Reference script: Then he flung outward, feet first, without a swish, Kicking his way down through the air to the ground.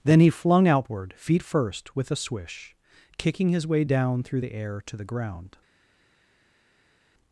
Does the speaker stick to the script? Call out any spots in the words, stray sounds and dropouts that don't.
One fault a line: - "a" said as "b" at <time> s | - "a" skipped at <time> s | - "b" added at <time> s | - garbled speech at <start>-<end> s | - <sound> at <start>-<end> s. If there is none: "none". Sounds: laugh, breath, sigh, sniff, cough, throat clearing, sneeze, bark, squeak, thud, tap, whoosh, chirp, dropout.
- "without" said as "with" at 1.9 s